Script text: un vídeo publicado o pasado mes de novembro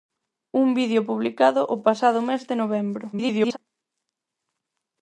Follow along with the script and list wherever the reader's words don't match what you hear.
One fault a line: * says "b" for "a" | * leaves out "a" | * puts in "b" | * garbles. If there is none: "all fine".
* garbles